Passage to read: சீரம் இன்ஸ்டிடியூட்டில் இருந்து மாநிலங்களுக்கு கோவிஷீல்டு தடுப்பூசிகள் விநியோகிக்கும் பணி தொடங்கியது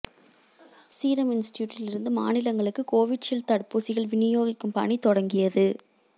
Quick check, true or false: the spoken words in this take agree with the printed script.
true